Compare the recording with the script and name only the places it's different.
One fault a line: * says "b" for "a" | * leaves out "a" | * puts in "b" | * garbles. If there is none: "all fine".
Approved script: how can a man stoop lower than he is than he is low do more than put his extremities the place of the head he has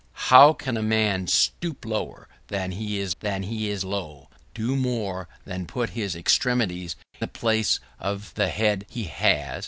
all fine